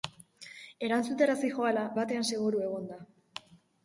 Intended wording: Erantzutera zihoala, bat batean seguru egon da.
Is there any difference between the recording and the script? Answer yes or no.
yes